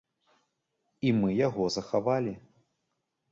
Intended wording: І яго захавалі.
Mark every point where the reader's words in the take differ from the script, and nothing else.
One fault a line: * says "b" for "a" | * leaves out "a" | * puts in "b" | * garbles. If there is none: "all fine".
* puts in "мы"